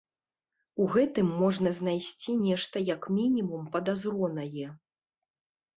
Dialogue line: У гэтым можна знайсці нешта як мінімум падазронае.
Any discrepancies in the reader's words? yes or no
no